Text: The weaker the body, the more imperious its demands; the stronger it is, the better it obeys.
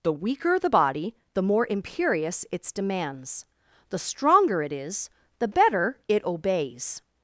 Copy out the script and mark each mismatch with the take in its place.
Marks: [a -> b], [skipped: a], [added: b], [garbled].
The weaker the body, the more imperious its demands; the stronger it is, the better it obeys.